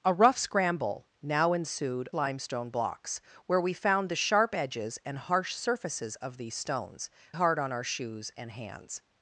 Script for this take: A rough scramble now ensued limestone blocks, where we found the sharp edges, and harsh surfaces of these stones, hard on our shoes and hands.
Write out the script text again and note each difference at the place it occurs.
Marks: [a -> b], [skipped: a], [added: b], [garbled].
A rough scramble now ensued limestone blocks, where we found the sharp edges, and harsh surfaces of these stones, hard on our shoes and hands.